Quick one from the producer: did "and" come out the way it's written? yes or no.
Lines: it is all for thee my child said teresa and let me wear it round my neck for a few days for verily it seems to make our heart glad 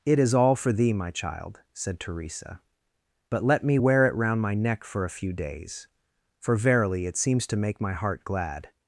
no